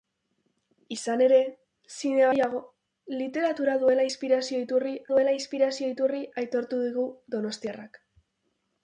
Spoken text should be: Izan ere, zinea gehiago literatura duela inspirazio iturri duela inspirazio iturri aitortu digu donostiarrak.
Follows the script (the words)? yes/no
yes